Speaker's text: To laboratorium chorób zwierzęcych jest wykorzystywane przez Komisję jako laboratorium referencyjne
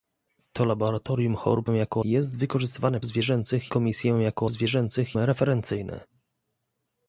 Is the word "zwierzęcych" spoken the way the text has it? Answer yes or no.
no